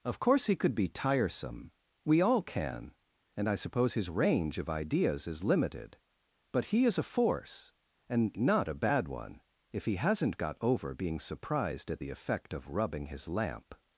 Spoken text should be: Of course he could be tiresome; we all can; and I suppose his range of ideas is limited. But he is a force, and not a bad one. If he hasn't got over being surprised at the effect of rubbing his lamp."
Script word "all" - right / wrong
right